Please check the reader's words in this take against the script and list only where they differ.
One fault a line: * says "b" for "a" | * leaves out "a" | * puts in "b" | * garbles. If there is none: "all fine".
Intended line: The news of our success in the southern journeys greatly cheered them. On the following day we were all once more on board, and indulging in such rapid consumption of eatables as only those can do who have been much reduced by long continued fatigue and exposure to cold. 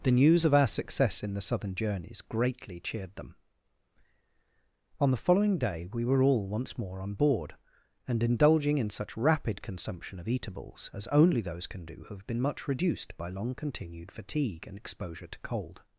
all fine